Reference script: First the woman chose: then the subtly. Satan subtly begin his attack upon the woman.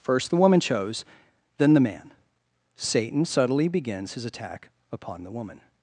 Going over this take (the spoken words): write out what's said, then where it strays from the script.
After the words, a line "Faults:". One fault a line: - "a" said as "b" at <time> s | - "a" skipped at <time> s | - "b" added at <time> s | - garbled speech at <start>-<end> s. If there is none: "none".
First the woman chose: then the man. Satan subtly begins his attack upon the woman.
Faults:
- "subtly" said as "man" at 1.8 s
- "begin" said as "begins" at 3.7 s